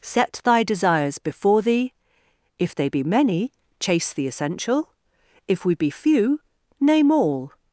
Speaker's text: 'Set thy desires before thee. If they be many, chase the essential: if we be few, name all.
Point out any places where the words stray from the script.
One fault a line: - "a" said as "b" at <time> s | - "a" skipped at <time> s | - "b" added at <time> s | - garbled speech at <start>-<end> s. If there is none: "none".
none